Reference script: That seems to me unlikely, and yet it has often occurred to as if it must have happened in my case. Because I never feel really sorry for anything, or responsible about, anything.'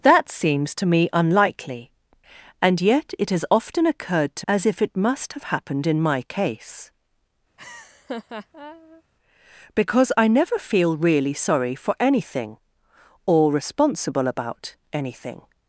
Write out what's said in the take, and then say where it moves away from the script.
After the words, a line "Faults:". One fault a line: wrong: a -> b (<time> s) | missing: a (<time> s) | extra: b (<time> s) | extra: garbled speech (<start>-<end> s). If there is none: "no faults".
That seems to me unlikely, and yet it has often occurred to as if it must have happened in my case. Because I never feel really sorry for anything, or responsible about, anything.'
Faults:
no faults